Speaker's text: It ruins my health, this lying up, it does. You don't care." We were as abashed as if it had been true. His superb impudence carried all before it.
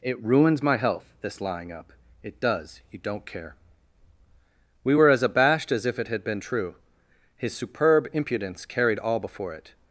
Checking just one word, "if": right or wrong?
right